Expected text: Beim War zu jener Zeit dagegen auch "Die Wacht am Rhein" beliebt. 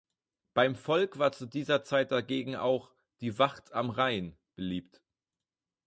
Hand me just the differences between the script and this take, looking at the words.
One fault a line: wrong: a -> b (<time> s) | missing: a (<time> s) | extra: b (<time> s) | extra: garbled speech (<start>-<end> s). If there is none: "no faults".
extra: Volk (0.8 s)
wrong: jener -> dieser (1.4 s)